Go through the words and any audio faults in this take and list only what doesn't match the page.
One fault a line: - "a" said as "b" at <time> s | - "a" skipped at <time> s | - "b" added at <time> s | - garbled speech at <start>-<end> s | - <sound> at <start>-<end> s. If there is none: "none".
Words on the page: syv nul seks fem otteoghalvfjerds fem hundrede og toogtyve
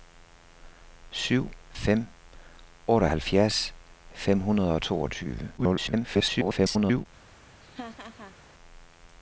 - "nul seks" skipped at 1.5 s
- garbled speech at 5.6-7.1 s
- laugh at 7.6-8.4 s